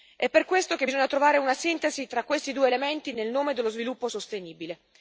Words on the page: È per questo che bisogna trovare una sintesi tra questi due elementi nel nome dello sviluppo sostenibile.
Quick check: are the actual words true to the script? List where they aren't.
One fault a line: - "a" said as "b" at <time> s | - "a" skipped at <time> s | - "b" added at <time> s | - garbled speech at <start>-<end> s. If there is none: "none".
none